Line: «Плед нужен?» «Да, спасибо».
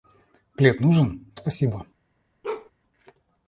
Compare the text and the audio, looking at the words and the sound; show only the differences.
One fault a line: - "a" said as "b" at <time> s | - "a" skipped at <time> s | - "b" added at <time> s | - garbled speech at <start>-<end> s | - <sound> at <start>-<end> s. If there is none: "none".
- "Да" skipped at 1.3 s
- bark at 2.4-2.7 s